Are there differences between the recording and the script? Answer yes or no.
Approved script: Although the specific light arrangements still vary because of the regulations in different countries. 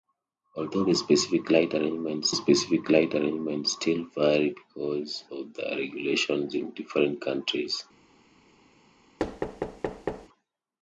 yes